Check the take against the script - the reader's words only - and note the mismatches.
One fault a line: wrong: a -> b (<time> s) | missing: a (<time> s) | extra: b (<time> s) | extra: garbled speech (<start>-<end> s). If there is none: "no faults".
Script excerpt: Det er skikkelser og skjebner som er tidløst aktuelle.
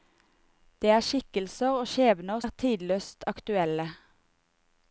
missing: som (2.4 s)